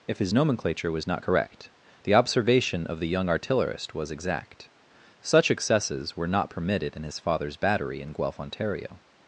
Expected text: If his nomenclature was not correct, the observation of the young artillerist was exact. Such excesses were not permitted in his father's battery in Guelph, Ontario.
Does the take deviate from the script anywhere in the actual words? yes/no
no